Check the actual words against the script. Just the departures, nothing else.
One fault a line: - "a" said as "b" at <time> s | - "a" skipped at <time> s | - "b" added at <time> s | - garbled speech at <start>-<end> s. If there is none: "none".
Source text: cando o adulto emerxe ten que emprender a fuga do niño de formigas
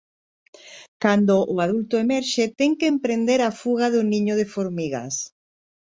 none